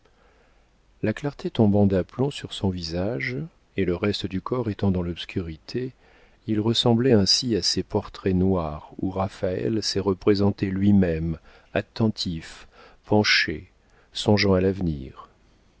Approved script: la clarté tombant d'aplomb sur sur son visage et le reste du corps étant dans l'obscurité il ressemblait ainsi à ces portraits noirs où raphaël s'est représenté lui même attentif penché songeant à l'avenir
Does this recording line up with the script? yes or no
no